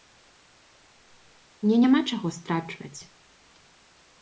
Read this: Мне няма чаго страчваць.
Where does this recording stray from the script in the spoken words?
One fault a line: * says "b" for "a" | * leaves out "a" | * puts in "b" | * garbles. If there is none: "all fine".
all fine